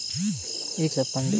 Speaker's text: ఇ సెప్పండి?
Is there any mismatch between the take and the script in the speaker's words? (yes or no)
no